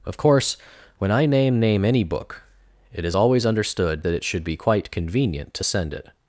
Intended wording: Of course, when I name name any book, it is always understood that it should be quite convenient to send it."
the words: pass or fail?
pass